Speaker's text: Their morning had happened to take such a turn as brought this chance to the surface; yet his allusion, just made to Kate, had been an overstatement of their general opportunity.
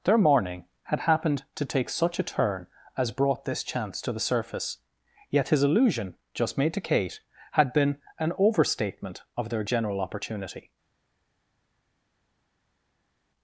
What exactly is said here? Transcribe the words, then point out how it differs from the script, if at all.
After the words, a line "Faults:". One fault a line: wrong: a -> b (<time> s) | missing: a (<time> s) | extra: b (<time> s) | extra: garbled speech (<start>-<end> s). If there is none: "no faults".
Their morning had happened to take such a turn as brought this chance to the surface; yet his allusion, just made to Kate, had been an overstatement of their general opportunity.
Faults:
no faults